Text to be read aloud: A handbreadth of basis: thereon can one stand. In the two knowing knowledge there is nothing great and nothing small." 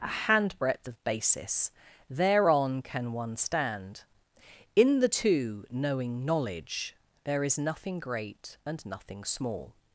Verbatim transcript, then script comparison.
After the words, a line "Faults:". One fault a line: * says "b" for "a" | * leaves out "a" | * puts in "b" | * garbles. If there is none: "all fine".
A handbreadth of basis: thereon can one stand. In the two knowing knowledge there is nothing great and nothing small."
Faults:
all fine